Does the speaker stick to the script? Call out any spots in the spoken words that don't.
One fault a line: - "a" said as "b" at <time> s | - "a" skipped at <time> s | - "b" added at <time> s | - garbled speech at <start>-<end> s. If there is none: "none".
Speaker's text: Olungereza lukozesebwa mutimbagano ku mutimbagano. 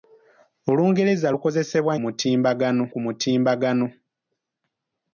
none